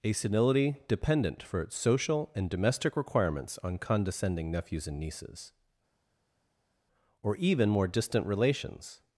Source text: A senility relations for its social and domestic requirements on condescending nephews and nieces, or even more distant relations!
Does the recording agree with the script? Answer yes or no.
no